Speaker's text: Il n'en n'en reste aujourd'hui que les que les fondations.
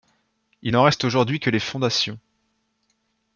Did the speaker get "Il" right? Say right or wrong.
right